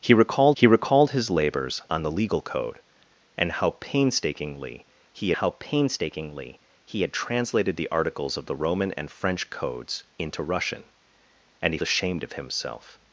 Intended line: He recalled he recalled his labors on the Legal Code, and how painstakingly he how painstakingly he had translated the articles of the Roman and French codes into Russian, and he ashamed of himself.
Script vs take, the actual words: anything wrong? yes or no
no